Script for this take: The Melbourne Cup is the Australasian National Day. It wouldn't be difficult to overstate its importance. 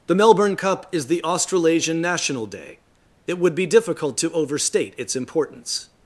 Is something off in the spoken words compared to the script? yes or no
yes